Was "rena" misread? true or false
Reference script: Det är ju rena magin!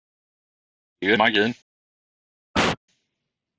true